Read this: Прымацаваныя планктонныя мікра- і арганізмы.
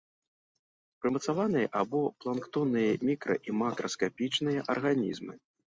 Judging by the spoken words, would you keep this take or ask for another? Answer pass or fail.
fail